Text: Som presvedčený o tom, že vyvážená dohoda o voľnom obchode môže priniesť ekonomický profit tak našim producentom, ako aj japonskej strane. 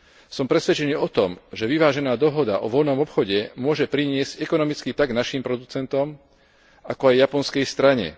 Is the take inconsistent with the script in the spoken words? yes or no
yes